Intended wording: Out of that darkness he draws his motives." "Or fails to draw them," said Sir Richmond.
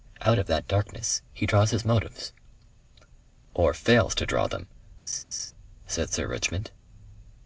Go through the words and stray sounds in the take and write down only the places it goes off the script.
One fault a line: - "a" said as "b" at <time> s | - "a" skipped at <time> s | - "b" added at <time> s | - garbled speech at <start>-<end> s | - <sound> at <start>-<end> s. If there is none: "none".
- laugh at 5.1-5.5 s